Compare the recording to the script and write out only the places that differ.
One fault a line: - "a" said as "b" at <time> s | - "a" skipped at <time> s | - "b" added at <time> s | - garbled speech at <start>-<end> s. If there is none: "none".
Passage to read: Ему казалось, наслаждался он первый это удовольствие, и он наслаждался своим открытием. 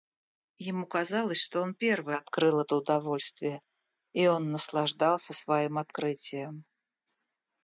- "наслаждался" said as "что" at 1.4 s
- "открыл" added at 2.1 s